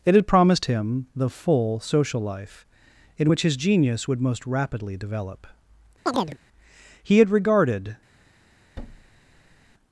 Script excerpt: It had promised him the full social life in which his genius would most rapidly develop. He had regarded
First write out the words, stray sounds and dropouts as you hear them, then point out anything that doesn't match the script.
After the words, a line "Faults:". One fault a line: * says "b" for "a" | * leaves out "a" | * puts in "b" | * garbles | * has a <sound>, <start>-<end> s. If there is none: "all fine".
It had promised him the full social life in which his genius would most rapidly develop. He had regarded
Faults:
* has a chirp, 6.1-6.4 s
* has a thud, 8.8-9.7 s